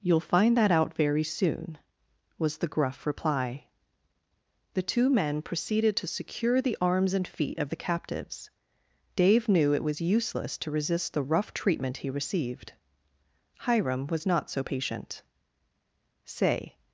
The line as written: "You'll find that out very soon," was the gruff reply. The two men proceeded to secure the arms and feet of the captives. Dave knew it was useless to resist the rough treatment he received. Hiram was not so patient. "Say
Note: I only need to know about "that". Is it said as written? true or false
true